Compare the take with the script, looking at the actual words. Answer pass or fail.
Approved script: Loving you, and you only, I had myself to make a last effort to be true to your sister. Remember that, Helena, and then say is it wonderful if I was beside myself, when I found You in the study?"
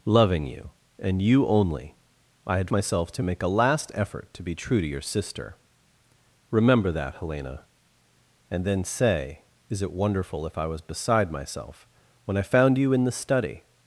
pass